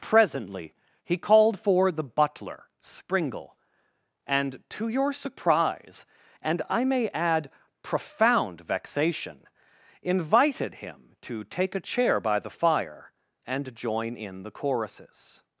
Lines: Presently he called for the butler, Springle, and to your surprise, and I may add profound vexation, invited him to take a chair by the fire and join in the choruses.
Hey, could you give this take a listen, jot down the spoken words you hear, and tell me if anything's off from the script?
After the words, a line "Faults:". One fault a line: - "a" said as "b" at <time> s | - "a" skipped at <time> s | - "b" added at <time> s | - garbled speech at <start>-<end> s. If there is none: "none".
Presently he called for the butler, Springle, and to your surprise, and I may add profound vexation, invited him to take a chair by the fire and join in the choruses.
Faults:
none